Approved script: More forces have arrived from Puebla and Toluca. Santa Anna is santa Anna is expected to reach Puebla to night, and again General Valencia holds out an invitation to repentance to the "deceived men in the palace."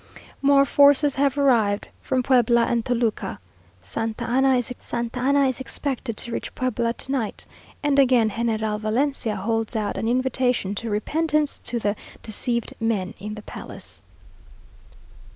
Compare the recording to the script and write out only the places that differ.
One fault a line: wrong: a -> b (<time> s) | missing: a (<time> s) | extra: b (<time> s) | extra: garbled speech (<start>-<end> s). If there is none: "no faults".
no faults